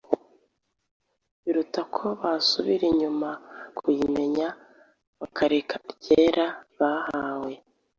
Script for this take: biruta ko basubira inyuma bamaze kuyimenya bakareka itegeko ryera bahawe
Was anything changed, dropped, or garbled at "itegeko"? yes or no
yes